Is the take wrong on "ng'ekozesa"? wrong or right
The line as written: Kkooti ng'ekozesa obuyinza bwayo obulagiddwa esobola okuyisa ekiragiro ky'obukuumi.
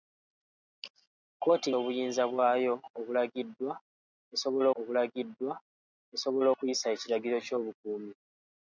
wrong